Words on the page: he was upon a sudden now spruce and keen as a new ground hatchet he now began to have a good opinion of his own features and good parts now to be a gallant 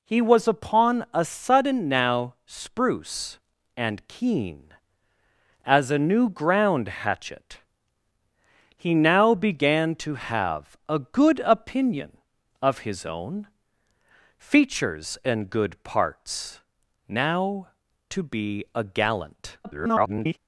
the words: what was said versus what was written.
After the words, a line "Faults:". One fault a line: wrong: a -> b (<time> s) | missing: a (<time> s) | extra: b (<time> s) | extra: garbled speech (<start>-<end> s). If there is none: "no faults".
he was upon a sudden now spruce and keen as a new ground hatchet he now began to have a good opinion of his own features and good parts now to be a gallant [garbled]
Faults:
extra: garbled speech (19.6-20.4 s)